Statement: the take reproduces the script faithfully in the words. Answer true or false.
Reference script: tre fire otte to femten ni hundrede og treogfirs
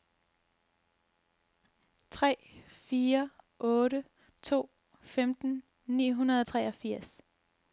true